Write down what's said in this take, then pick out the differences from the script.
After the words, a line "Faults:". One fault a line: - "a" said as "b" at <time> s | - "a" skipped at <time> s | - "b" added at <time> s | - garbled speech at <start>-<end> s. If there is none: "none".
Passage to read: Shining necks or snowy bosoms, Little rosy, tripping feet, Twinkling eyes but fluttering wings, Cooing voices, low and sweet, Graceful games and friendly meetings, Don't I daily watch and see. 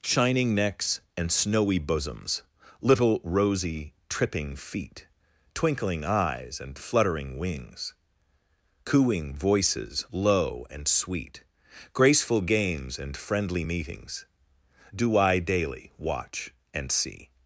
Shining necks and snowy bosoms, Little rosy, tripping feet, Twinkling eyes and fluttering wings, Cooing voices, low and sweet, Graceful games and friendly meetings, Do I daily watch and see.
Faults:
- "or" said as "and" at 1.1 s
- "but" said as "and" at 6.6 s
- "Don't" said as "Do" at 14.9 s